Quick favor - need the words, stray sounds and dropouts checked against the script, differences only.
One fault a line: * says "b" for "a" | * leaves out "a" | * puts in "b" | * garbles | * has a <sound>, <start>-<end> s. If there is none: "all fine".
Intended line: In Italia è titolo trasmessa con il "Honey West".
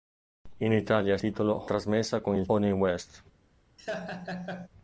* has a laugh, 3.8-4.7 s